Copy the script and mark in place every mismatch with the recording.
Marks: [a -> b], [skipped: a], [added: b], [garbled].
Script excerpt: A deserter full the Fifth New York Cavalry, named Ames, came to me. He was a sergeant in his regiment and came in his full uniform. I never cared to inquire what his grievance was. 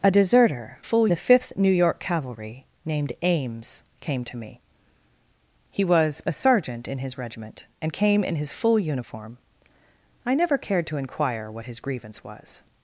A deserter full the Fifth New York Cavalry, named Ames, came to me. He was a sergeant in his regiment and came in his full uniform. I never cared to inquire what his grievance was.